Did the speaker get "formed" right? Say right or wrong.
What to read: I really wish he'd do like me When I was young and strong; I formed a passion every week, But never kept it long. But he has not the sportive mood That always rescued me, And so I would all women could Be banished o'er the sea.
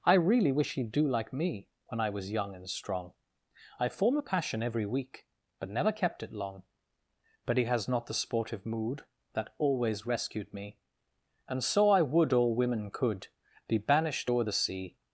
wrong